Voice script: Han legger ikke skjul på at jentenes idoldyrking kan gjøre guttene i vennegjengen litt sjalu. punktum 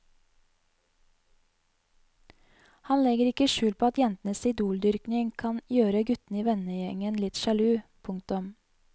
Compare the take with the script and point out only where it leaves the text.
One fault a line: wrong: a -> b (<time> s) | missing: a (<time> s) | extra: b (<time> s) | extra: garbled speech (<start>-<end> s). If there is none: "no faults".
no faults